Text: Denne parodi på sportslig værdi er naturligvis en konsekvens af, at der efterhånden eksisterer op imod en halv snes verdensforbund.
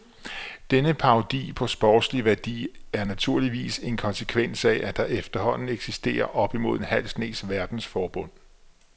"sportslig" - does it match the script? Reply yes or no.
yes